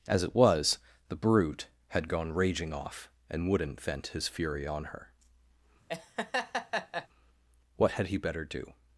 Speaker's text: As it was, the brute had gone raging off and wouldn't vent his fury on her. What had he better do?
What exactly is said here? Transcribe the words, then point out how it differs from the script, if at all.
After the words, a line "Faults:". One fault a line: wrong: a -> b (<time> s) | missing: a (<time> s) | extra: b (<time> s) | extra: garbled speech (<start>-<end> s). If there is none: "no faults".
As it was, the brute had gone raging off and wouldn't vent his fury on her. What had he better do?
Faults:
no faults